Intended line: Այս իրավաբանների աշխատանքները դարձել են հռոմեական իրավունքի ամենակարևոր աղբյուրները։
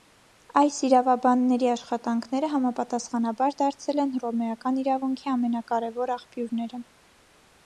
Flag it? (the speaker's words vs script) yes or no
yes